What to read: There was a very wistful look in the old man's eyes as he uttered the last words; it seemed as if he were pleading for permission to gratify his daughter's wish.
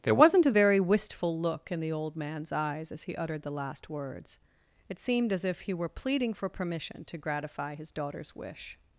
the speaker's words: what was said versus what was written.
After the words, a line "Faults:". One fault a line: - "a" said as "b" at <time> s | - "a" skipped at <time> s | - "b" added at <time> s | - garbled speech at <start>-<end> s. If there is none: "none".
There wasn't a very wistful look in the old man's eyes as he uttered the last words; it seemed as if he were pleading for permission to gratify his daughter's wish.
Faults:
- "was" said as "wasn't" at 0.1 s